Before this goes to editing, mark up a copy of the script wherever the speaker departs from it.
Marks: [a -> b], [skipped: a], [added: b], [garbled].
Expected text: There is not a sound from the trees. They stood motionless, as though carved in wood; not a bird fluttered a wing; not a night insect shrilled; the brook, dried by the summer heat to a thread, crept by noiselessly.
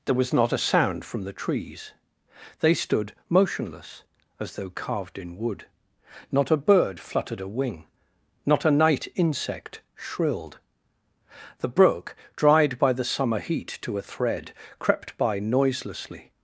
There [is -> was] not a sound from the trees. They stood motionless, as though carved in wood; not a bird fluttered a wing; not a night insect shrilled; the brook, dried by the summer heat to a thread, crept by noiselessly.